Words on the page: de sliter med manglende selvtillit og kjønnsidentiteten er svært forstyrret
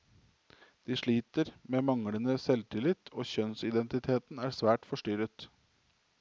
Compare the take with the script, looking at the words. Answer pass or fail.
pass